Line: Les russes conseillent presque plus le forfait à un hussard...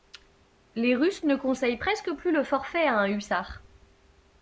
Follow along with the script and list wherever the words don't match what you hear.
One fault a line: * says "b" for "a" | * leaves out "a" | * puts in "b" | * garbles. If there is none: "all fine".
* puts in "ne"